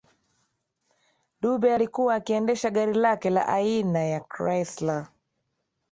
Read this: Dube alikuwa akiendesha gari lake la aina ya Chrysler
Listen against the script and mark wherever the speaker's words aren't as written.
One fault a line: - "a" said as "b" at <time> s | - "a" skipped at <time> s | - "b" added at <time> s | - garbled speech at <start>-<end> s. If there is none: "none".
none